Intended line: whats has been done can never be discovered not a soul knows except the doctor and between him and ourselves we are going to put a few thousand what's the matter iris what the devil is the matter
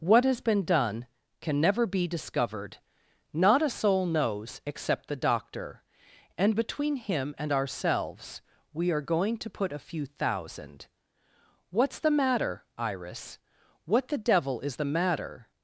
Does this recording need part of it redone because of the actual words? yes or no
yes